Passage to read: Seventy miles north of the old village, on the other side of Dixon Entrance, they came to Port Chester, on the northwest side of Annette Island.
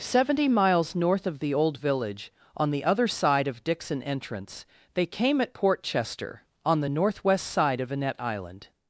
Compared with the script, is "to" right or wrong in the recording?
wrong